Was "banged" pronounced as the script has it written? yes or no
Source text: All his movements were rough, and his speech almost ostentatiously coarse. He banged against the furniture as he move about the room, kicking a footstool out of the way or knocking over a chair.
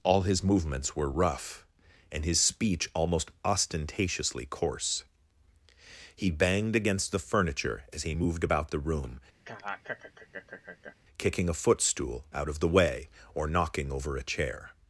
yes